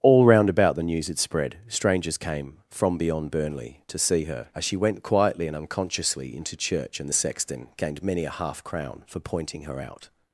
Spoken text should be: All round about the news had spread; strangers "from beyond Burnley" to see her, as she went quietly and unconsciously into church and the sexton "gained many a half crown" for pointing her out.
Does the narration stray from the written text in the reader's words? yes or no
yes